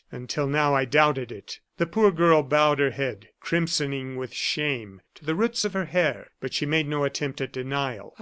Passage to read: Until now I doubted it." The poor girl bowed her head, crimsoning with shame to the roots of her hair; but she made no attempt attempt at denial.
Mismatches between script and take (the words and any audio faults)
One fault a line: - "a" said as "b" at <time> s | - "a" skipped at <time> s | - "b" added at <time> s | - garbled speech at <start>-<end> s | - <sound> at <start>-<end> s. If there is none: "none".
- "attempt" skipped at 7.4 s